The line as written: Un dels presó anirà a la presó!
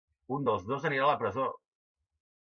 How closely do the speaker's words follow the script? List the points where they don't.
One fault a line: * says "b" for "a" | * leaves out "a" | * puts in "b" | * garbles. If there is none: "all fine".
* says "dos" for "presó"